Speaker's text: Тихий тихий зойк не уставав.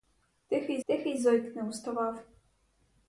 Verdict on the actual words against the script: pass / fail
pass